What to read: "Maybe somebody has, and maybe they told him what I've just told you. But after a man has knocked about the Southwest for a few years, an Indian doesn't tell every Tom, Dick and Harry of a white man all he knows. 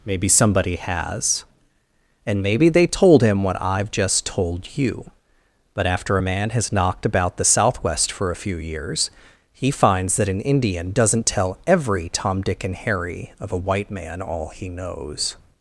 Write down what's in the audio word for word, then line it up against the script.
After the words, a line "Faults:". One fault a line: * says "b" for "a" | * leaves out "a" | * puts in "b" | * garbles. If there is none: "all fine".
"Maybe somebody has, and maybe they told him what I've just told you. But after a man has knocked about the Southwest for a few years, he finds that an Indian doesn't tell every Tom, Dick and Harry of a white man all he knows.
Faults:
* puts in "he finds that"